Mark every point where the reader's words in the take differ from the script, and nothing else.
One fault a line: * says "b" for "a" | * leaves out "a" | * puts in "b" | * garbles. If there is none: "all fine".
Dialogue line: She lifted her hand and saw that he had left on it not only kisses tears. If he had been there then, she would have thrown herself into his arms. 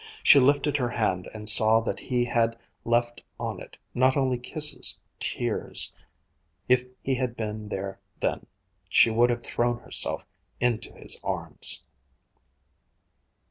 all fine